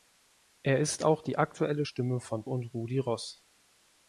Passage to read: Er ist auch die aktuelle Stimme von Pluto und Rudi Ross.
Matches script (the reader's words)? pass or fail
fail